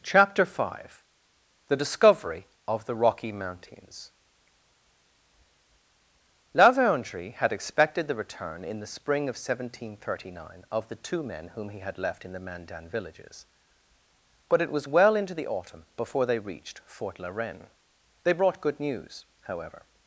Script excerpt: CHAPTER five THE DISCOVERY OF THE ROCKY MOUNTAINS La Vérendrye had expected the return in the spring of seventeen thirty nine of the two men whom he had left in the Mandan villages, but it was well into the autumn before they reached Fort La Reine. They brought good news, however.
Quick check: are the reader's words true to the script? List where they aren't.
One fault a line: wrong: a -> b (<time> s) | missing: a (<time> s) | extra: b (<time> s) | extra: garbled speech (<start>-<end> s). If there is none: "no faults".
no faults